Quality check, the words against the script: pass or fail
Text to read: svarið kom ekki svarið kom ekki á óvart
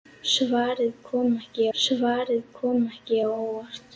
pass